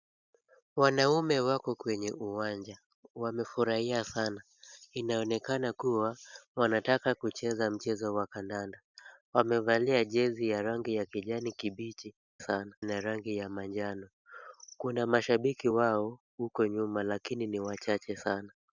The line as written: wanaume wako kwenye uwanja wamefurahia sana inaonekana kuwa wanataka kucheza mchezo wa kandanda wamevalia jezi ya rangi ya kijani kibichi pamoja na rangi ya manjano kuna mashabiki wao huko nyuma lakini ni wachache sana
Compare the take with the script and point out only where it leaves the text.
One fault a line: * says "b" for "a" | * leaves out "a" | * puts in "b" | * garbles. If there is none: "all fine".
* says "sana" for "pamoja"